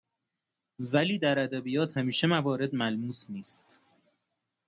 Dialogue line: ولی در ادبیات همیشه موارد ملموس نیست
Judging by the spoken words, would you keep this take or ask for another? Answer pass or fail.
pass